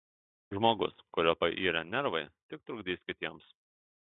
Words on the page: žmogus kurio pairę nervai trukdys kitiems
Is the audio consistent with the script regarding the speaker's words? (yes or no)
no